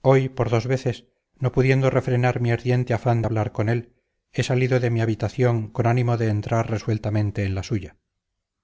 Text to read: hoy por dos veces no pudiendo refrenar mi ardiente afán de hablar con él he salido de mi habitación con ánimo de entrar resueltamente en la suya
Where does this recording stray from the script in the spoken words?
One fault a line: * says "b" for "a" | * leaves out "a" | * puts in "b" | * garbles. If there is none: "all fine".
all fine